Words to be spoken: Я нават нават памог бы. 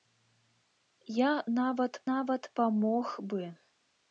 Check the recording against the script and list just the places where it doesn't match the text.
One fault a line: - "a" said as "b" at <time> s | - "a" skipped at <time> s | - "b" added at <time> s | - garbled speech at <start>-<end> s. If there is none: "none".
none